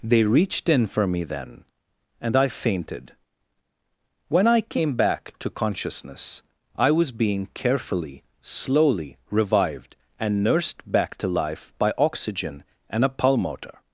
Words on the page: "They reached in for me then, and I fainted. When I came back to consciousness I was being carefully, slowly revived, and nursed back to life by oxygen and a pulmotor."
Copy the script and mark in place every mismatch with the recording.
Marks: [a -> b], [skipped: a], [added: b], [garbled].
"They reached in for me then, and I fainted. When I came back to consciousness I was being carefully, slowly revived, and nursed back to life by oxygen and a pulmotor."